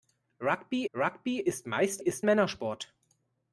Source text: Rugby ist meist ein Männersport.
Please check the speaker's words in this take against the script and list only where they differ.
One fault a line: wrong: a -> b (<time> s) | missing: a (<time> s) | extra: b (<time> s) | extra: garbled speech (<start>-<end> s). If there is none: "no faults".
extra: rugby (0.9 s)
wrong: ein -> ist (2.0 s)